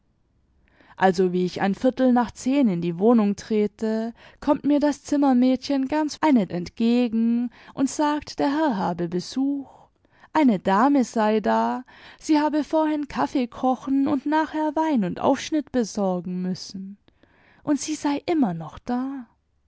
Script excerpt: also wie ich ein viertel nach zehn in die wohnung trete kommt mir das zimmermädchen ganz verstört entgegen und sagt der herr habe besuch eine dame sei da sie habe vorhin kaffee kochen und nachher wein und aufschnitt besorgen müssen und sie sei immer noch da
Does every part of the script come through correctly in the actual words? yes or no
no